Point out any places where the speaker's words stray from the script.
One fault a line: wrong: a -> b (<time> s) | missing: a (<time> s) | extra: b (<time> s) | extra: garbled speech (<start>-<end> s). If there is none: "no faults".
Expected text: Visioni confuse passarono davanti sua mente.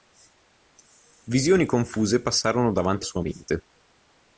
no faults